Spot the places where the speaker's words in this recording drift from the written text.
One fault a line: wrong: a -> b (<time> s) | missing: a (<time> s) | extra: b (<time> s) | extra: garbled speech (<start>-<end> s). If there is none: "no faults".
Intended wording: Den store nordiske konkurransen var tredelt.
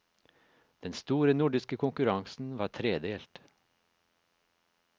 no faults